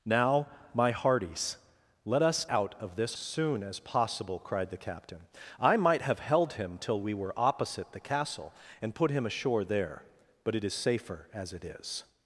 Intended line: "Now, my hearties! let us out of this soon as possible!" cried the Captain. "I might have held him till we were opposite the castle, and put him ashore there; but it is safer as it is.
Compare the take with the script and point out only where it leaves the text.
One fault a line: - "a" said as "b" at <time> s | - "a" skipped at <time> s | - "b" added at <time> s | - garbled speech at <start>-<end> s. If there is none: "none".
none